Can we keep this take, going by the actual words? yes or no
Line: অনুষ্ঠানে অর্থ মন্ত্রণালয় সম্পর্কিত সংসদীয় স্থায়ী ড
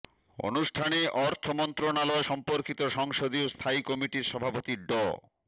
no